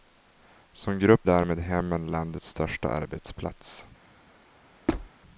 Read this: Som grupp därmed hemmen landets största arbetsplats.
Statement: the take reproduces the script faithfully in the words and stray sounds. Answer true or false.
false